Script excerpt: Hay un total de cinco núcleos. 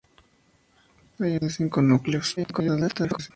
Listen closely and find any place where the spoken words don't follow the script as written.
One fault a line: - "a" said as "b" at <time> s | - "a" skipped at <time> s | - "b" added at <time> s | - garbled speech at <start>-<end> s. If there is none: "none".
- "total" skipped at 1.4 s
- garbled speech at 2.4-3.3 s